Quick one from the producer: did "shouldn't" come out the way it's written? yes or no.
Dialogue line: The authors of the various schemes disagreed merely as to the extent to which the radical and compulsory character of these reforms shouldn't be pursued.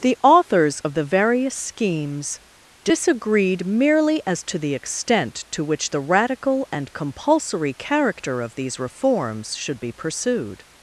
no